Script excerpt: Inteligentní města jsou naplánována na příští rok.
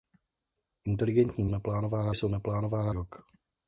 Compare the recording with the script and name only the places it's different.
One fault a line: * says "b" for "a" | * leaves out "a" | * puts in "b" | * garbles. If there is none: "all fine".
* says "naplánována" for "města"
* leaves out "na příští"